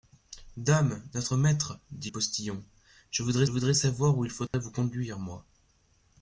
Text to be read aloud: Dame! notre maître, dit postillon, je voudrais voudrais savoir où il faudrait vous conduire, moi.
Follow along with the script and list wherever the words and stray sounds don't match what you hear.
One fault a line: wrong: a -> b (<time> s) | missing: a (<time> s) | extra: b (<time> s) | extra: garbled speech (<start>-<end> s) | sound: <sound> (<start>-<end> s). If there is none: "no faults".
sound: dropout (4.5-4.5 s)